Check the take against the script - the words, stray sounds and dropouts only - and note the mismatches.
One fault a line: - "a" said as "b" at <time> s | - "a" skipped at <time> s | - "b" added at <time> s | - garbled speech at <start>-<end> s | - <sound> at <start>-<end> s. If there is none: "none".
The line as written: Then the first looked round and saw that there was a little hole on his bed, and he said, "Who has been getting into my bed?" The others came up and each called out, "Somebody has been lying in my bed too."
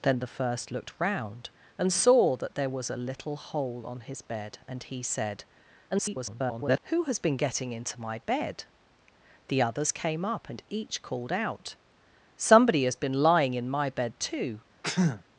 - garbled speech at 5.9-6.8 s
- sneeze at 14.8-15.2 s